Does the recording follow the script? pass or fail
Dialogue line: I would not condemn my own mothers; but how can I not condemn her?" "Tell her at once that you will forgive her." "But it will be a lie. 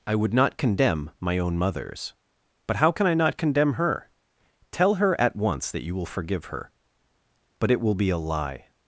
pass